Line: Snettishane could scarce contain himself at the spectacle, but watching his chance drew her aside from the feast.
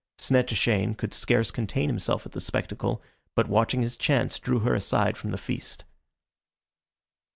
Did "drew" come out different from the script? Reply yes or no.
no